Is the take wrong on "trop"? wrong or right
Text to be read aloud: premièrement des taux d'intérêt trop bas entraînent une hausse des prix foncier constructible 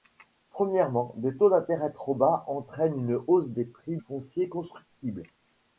right